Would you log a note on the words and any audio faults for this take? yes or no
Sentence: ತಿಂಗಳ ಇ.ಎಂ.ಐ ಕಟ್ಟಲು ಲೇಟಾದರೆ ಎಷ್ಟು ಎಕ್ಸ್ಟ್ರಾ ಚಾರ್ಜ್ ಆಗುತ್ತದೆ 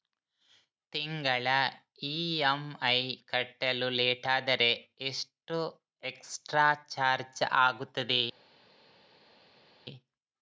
no